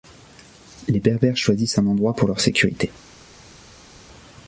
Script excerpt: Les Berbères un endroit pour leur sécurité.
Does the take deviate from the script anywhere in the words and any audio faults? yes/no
yes